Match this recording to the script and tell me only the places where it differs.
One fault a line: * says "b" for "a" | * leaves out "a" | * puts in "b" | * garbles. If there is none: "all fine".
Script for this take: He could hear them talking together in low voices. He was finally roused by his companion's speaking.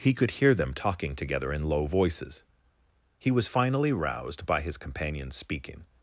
all fine